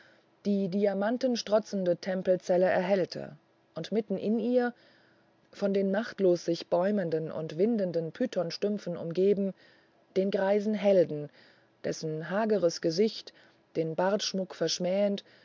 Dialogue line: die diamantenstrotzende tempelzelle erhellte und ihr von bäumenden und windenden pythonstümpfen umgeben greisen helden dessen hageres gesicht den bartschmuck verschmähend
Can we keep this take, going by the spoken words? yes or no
no